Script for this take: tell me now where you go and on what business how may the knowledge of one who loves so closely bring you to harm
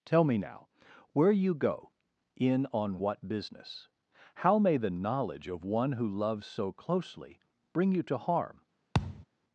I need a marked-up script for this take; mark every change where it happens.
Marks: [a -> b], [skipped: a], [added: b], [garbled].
tell me now where you go [and -> in] on what business how may the knowledge of one who loves so closely bring you to harm